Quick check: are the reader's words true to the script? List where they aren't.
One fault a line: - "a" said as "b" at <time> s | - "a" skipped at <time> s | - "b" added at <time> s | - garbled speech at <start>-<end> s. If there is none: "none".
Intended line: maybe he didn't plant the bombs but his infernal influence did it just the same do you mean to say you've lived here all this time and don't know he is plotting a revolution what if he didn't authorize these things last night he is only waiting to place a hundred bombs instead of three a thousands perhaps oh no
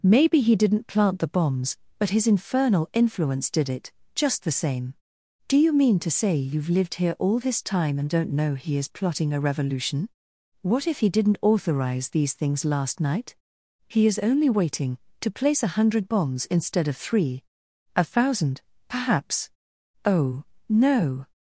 - "thousands" said as "thousand" at 18.0 s